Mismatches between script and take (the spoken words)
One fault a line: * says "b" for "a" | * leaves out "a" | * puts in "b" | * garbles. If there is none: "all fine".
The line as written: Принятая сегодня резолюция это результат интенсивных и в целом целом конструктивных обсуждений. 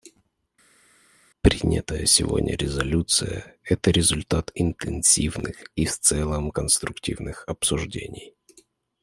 * leaves out "целом"